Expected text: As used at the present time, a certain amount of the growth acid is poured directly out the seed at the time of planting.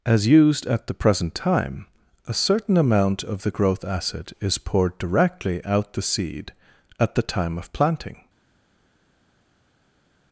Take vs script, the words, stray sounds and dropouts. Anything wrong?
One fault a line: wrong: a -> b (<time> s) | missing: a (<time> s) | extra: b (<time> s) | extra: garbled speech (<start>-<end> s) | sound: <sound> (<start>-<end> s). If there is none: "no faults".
no faults